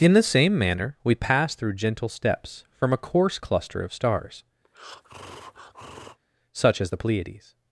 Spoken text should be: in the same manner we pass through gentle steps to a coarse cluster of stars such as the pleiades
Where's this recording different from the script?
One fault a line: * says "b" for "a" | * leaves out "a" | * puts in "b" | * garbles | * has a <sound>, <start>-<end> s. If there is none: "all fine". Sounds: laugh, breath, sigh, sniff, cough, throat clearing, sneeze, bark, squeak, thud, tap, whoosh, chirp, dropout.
* says "from" for "to"
* has a breath, 4.6-6.2 s